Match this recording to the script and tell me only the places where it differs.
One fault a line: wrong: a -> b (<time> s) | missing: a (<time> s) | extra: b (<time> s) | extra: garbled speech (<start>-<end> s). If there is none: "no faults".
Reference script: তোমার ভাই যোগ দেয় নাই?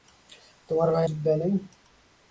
no faults